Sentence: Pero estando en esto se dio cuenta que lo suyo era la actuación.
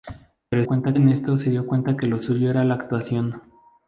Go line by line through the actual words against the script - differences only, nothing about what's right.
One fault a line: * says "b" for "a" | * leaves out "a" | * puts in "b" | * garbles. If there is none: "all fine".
* says "cuenta" for "estando"